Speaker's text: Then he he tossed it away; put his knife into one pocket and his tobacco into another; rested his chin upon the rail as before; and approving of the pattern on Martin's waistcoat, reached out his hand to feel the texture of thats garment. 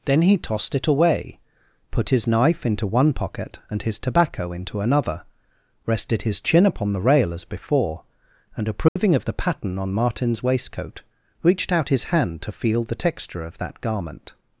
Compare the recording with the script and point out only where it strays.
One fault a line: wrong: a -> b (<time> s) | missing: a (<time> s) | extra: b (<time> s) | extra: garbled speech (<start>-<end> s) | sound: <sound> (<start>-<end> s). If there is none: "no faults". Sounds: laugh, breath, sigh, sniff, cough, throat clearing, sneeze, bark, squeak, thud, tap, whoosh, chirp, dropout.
missing: he (0.4 s)
sound: dropout (8.9-9.0 s)
wrong: thats -> that (13.6 s)